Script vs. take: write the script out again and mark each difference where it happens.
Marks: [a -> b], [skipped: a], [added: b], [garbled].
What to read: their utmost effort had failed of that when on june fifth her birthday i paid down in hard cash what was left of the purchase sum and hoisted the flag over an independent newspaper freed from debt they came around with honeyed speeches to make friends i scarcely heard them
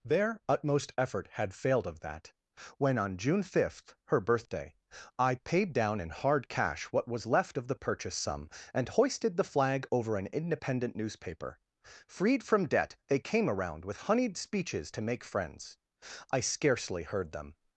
their utmost effort had failed of that when on june fifth her birthday i paid down in hard cash what was left of the purchase sum and hoisted the flag over an independent newspaper freed from debt they came around with honeyed speeches to make friends i scarcely heard them